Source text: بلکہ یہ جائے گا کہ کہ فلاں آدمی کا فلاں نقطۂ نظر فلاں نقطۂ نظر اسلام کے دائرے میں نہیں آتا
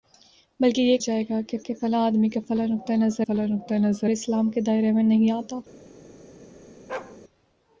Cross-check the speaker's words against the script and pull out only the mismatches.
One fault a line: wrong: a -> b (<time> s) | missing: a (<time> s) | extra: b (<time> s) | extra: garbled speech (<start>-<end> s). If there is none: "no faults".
no faults